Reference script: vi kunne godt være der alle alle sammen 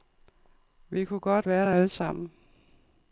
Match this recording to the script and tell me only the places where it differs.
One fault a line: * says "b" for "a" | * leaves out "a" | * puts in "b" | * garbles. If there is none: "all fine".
* leaves out "alle"